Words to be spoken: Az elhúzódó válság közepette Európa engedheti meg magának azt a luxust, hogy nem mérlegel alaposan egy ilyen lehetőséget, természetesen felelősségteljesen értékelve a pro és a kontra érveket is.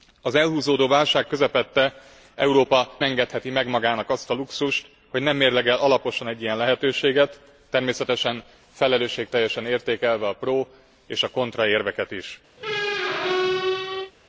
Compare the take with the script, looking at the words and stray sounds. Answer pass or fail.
fail